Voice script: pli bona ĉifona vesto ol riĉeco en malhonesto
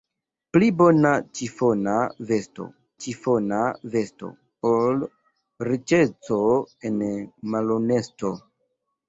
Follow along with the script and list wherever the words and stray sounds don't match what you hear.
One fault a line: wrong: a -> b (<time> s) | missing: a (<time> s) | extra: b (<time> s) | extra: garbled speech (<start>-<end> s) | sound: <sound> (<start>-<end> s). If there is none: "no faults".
extra: ĉifona vesto (3.0 s)